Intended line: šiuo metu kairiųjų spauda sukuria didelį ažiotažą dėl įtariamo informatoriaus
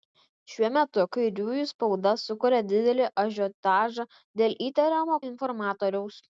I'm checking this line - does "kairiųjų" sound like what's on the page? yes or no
yes